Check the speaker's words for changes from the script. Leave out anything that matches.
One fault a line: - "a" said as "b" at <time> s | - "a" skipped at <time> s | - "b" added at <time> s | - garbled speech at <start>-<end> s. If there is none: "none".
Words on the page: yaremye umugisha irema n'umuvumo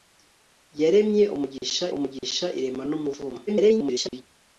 - "umugisha" added at 2.0 s
- garbled speech at 3.5-4.2 s